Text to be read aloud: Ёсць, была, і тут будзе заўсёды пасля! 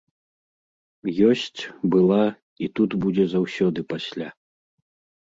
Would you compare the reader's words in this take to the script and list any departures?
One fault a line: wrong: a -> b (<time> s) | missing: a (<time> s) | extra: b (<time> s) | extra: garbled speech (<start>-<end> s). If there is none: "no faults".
no faults